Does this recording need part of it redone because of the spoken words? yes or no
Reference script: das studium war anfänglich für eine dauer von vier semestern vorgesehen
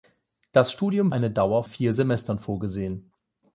yes